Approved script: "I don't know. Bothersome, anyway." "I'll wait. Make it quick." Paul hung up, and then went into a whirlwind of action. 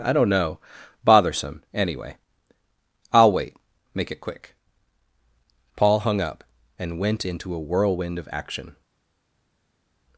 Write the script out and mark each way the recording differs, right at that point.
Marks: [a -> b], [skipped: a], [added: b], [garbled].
"I don't know. Bothersome, anyway." "I'll wait. Make it quick." Paul hung up, and [skipped: then] went into a whirlwind of action.